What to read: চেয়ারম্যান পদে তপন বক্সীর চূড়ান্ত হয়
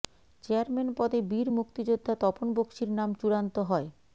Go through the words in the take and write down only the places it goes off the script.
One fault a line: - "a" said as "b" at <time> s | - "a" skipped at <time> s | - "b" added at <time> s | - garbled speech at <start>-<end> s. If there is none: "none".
- "বীর মুক্তিযোদ্ধা" added at 1.3 s
- "নাম" added at 3.0 s